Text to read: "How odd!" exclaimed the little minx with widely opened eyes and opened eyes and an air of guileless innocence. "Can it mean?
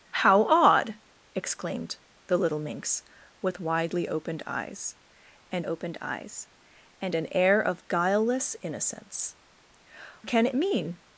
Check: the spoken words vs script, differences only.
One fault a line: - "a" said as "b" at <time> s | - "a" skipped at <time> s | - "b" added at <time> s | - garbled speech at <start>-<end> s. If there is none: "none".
none